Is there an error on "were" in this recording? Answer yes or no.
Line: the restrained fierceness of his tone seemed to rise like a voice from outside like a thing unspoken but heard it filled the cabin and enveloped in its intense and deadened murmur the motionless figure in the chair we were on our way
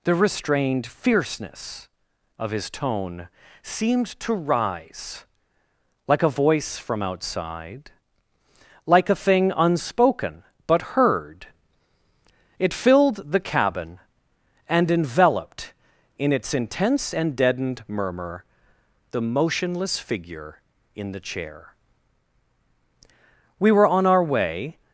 no